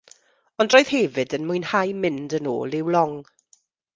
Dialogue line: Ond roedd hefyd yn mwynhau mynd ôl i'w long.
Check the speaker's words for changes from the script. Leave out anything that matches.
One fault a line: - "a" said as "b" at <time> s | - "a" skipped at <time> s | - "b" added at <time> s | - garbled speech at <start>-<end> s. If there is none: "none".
- "yn" added at 2.4 s